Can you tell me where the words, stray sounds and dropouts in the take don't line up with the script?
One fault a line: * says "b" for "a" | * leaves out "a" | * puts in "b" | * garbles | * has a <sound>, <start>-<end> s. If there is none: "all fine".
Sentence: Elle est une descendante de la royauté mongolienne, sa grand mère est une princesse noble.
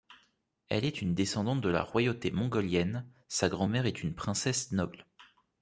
all fine